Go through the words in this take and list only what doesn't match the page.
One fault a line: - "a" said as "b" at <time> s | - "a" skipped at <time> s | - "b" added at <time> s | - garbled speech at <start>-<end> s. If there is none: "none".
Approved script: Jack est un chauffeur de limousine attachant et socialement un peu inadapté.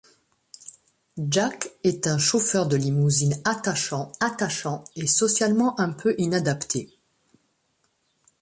- "attachant" added at 4.2 s